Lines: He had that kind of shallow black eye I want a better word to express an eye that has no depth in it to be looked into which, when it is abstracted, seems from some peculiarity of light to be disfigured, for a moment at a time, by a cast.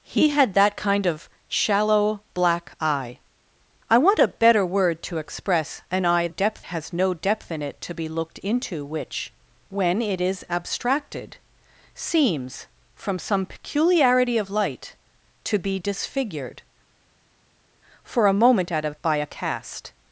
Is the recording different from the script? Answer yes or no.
yes